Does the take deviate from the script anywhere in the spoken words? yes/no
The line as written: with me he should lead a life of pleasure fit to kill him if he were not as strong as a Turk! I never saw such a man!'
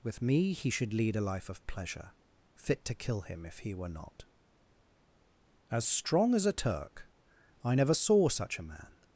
no